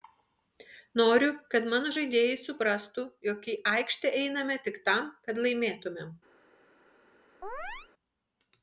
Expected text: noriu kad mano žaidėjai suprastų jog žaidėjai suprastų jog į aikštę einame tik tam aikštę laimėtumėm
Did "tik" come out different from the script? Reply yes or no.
no